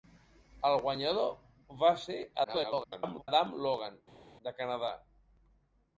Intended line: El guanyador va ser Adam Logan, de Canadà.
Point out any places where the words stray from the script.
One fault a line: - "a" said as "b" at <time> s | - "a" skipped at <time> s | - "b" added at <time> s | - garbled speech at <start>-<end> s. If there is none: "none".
- garbled speech at 2.4-3.3 s